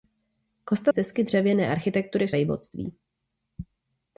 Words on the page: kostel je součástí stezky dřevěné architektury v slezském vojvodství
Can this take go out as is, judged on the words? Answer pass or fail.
fail